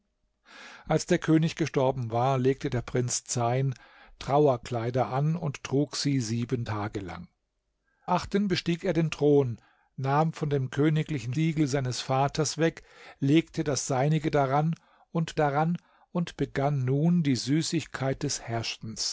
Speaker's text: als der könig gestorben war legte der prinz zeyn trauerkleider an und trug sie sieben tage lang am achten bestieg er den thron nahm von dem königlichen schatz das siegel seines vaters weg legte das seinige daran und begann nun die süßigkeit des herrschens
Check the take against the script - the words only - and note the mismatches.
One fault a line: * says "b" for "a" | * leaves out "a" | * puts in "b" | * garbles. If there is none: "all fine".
* leaves out "am"
* leaves out "schatz das"
* puts in "daran und"